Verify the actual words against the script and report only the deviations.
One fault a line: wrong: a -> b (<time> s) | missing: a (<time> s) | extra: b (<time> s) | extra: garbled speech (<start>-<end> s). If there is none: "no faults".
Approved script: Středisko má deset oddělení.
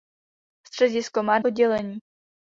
missing: deset (1.4 s)